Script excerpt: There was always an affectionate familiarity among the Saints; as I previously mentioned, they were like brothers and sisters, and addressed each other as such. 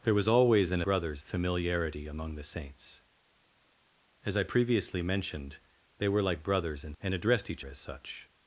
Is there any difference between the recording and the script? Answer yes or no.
yes